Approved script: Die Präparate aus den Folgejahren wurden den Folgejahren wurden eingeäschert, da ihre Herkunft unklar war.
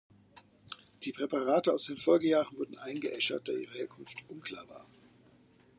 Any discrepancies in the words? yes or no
yes